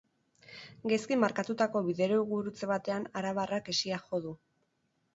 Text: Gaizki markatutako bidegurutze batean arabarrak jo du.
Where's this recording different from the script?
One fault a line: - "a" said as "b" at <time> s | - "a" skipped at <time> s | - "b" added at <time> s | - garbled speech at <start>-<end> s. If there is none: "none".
- "hesia" added at 3.8 s